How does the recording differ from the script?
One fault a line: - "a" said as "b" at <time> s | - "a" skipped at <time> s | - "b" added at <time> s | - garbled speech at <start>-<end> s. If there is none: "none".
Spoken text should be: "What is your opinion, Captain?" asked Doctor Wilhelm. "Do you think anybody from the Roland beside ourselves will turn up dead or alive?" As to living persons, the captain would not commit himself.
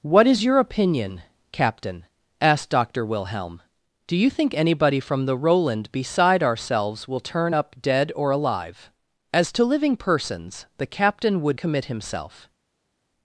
- "not" skipped at 11.6 s